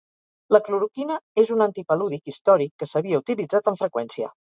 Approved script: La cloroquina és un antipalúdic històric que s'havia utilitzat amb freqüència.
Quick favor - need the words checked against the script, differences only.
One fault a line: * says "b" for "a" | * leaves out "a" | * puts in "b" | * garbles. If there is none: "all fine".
all fine